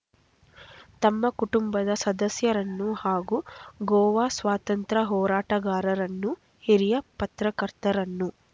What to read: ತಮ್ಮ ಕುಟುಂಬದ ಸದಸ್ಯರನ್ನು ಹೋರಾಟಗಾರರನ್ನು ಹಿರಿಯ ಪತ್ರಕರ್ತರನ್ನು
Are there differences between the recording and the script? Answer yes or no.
yes